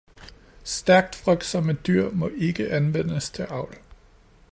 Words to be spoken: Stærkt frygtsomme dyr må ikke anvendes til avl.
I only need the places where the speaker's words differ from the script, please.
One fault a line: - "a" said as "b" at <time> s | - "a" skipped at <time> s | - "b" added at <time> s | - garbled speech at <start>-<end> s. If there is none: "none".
none